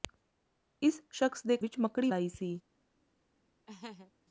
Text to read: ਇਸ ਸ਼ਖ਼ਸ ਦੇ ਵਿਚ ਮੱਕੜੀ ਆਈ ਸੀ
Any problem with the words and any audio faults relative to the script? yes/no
yes